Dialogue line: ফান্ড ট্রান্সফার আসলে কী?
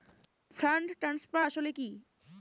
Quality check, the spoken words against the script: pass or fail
pass